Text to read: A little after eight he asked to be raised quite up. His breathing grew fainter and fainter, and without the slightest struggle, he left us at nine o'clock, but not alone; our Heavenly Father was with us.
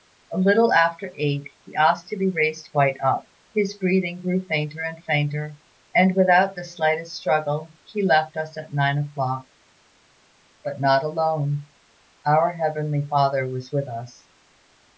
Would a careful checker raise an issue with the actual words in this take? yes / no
no